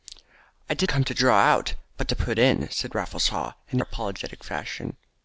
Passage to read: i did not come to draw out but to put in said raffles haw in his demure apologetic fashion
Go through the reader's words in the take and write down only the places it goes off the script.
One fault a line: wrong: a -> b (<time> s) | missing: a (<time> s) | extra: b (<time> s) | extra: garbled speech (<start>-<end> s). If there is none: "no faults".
missing: not (0.9 s)
missing: his demure (3.8 s)